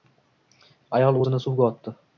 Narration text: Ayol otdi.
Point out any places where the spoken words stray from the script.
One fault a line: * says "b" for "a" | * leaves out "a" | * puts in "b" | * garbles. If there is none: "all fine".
* puts in "o‘zini suvga"